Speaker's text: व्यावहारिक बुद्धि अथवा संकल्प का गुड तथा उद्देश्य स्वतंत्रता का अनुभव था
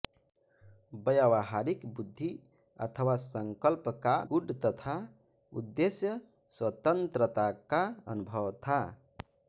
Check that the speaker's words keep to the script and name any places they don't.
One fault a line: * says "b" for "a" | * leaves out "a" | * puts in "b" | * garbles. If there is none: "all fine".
all fine